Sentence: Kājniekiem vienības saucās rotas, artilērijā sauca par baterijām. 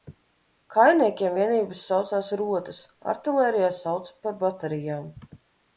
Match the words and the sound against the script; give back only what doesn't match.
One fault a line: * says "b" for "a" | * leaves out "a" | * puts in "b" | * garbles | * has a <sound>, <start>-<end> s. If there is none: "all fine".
all fine